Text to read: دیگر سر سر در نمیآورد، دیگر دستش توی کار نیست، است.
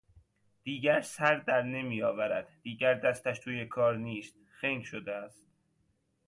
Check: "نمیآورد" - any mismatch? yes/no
no